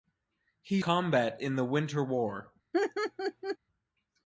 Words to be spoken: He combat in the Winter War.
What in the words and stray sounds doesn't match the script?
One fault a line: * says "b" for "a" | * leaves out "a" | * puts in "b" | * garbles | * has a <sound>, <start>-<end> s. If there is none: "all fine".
* has a laugh, 2.7-3.6 s